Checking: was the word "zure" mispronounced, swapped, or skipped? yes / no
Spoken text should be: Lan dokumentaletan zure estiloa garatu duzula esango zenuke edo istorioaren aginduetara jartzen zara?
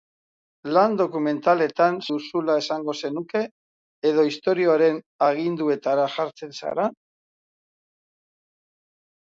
yes